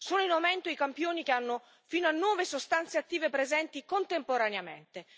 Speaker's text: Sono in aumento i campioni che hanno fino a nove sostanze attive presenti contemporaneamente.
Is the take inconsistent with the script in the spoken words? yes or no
no